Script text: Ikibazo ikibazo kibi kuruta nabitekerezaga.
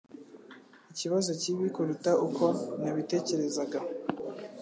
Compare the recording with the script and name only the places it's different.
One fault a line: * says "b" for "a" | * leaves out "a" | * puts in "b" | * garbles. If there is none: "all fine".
* leaves out "ikibazo"
* puts in "uko"